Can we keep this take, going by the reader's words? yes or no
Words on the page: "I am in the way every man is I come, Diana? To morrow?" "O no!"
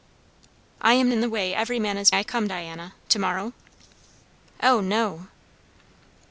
yes